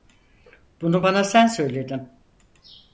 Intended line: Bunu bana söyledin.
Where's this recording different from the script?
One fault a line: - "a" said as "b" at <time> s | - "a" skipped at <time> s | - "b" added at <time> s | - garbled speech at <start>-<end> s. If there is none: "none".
- "sen" added at 1.2 s